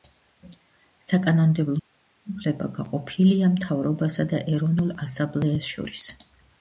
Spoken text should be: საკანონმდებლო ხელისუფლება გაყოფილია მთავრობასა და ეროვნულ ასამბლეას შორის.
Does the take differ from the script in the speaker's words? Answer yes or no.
no